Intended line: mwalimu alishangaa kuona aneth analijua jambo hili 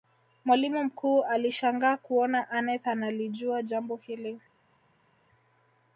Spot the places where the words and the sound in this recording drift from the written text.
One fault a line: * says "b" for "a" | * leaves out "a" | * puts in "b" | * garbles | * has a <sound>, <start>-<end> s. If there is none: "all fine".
* puts in "mkuu"